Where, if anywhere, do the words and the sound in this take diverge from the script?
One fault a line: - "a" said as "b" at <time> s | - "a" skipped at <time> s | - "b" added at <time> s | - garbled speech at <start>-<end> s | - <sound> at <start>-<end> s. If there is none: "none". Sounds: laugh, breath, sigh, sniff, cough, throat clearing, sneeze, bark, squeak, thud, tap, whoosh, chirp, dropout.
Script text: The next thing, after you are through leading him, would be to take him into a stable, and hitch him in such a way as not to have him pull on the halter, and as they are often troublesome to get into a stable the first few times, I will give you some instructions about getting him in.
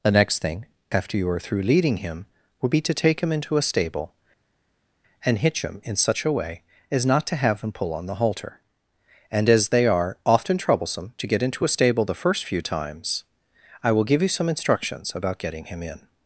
none